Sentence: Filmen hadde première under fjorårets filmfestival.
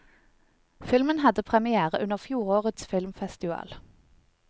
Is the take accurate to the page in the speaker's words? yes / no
yes